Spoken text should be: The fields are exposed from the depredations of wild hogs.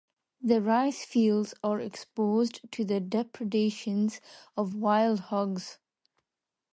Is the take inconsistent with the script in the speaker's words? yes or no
yes